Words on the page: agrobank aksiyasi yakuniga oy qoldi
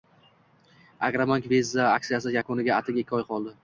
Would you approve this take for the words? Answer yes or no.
no